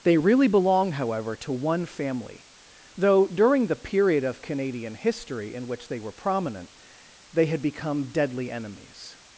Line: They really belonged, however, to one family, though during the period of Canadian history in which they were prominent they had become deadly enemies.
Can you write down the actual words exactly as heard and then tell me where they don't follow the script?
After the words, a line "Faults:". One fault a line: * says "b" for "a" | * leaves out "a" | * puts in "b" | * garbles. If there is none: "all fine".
They really belong, however, to one family, though during the period of Canadian history in which they were prominent they had become deadly enemies.
Faults:
* says "belong" for "belonged"